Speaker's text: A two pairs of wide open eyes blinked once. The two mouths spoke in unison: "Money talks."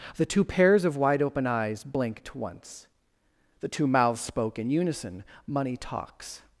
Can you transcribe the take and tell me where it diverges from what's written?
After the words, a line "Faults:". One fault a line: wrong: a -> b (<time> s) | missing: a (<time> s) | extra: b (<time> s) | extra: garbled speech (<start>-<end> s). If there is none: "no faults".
The two pairs of wide open eyes blinked once. The two mouths spoke in unison: "Money talks."
Faults:
wrong: A -> The (0.1 s)